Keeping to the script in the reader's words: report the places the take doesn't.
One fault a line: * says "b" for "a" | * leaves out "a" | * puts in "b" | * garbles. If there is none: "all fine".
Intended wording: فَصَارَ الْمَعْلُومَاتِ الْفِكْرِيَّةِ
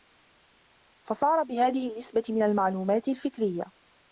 * puts in "بِهَذِهِ النِّسْبَةِ مِنْ"